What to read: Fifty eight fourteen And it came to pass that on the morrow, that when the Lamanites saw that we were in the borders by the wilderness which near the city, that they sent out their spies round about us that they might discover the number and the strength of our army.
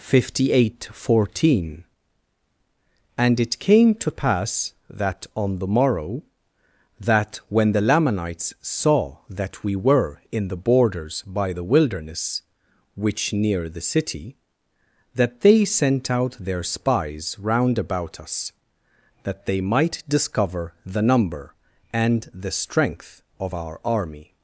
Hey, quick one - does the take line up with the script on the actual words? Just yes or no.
yes